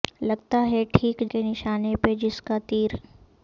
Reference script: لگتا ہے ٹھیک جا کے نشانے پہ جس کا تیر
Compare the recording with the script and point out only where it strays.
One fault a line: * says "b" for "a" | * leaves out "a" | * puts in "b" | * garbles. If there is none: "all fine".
* leaves out "جا"